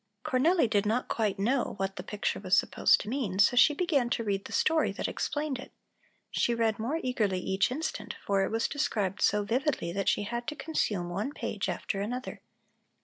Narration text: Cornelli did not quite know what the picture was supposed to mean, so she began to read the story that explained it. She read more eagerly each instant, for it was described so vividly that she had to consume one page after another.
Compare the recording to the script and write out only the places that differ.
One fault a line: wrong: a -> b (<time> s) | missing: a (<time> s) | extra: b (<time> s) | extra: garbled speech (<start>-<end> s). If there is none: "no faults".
no faults